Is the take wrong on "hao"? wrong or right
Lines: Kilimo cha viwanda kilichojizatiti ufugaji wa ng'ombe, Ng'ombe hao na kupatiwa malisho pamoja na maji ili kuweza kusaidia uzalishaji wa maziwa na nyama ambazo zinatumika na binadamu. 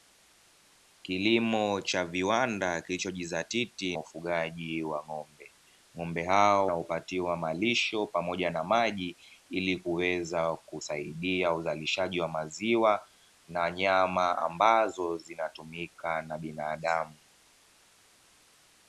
right